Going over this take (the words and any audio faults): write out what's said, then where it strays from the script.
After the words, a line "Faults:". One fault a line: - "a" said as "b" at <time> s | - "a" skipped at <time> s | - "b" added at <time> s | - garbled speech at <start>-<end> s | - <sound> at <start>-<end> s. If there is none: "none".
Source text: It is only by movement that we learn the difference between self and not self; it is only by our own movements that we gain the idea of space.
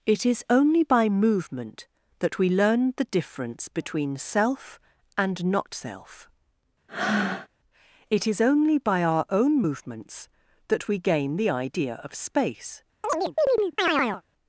It is only by movement that we learn the difference between self and not self; it is only by our own movements that we gain the idea of space.
Faults:
- breath at 6.9-7.5 s
- chirp at 13.0-14.2 s